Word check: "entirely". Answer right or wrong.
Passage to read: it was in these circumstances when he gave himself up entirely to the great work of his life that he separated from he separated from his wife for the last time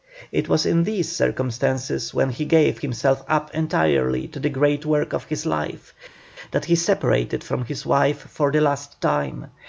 right